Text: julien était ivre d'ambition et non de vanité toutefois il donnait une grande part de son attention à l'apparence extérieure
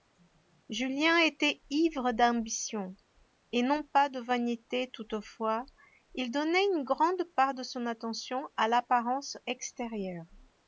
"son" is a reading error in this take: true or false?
false